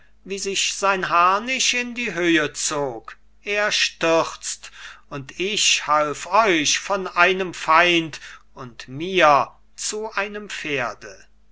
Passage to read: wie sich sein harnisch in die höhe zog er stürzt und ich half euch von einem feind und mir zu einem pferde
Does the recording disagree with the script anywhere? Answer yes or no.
no